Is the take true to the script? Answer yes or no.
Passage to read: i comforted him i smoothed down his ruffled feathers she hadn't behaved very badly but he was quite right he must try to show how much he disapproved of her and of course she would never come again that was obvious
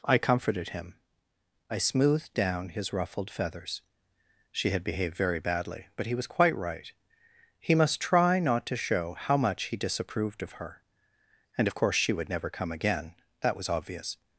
no